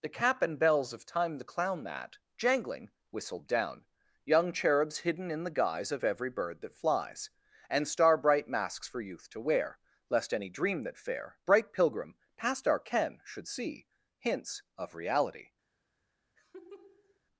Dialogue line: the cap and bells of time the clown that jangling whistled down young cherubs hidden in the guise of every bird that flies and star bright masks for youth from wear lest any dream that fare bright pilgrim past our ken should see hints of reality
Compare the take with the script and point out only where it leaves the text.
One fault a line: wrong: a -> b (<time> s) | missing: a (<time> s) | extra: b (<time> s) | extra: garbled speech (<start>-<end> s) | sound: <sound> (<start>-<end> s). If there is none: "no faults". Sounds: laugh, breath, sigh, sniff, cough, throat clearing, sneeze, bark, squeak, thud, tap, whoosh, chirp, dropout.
wrong: from -> to (9.3 s)
sound: laugh (16.4-17.2 s)